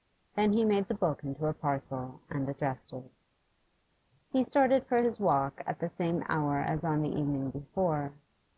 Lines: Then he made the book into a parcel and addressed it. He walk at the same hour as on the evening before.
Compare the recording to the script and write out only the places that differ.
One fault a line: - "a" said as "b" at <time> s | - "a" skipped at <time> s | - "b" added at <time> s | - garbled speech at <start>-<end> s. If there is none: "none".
- "started for his" added at 4.4 s